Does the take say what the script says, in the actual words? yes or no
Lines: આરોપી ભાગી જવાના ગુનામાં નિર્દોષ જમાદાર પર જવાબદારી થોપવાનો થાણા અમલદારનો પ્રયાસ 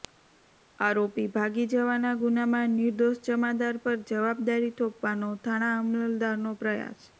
yes